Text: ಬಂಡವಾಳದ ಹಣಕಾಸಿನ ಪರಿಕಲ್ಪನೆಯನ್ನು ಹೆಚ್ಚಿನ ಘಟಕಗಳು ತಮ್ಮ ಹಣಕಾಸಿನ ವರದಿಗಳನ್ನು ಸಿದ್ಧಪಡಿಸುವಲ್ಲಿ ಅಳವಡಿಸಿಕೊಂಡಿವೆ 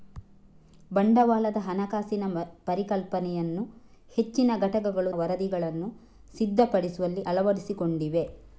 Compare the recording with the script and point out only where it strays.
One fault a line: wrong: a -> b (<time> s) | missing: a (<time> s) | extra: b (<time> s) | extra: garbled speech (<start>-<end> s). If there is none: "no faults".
missing: ತಮ್ಮ ಹಣಕಾಸಿನ (5.1 s)